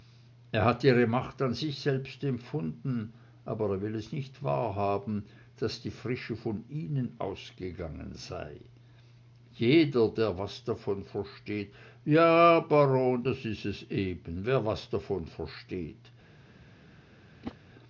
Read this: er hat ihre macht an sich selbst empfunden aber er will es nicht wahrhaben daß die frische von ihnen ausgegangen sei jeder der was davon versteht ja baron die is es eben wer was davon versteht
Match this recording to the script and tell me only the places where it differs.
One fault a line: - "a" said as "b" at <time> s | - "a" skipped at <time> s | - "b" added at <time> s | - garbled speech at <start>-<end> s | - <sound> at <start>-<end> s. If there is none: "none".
- "die" said as "das" at 13.2 s
- whoosh at 17.4-17.6 s